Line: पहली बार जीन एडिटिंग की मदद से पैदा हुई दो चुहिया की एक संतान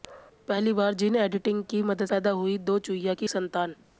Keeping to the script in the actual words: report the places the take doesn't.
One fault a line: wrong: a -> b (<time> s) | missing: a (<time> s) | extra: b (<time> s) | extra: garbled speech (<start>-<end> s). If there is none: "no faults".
missing: से (2.0 s)
missing: एक (3.3 s)